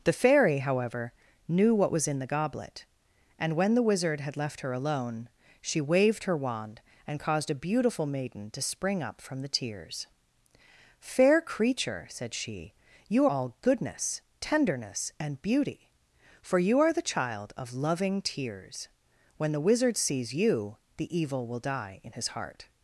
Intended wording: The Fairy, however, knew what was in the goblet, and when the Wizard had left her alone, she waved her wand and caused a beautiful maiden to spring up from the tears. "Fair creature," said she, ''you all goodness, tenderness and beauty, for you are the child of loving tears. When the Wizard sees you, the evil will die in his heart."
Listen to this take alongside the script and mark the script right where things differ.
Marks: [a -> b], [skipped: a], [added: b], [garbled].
The Fairy, however, knew what was in the goblet, and when the Wizard had left her alone, she waved her wand and caused a beautiful maiden to spring up from the tears. "Fair creature," said she, ''you all goodness, tenderness and beauty, for you are the child of loving tears. When the Wizard sees you, the evil will die in his heart."